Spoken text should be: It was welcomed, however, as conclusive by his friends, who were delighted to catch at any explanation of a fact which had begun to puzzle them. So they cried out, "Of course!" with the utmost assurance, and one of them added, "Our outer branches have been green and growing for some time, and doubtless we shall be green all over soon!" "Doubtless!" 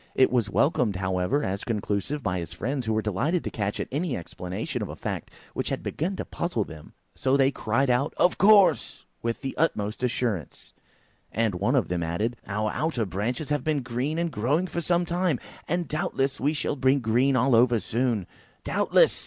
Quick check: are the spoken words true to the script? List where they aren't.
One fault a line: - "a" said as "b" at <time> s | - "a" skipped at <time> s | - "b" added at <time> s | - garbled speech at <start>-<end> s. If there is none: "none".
none